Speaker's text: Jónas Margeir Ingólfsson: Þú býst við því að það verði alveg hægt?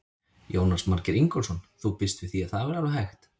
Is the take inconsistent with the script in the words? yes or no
no